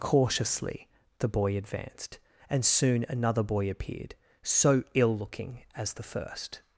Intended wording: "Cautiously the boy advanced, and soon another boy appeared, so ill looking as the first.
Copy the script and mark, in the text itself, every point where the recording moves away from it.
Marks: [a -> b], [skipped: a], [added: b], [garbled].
"Cautiously the boy advanced, and soon another boy appeared, so ill looking as the first.